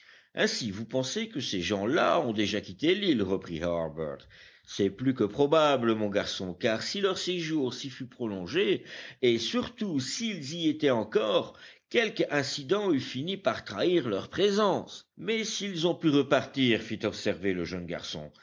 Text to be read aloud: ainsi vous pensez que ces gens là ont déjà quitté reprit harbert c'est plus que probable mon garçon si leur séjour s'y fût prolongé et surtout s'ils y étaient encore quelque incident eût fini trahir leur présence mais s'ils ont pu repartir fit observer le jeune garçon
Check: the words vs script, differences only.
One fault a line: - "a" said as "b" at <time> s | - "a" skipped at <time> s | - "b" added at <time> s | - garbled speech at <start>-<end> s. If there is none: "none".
- "l'île" added at 2.9 s
- "car" added at 6.5 s
- "par" added at 13.4 s